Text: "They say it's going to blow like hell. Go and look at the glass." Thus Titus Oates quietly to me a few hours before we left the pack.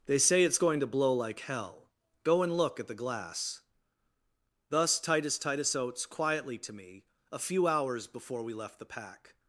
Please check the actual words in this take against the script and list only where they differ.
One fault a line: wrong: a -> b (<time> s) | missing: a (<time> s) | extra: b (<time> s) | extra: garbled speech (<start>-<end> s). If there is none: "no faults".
extra: Titus (5.4 s)